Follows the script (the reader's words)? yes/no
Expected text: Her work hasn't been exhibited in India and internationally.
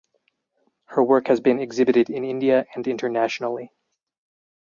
no